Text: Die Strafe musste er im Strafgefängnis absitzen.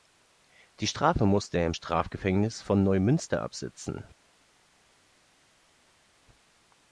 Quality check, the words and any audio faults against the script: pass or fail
fail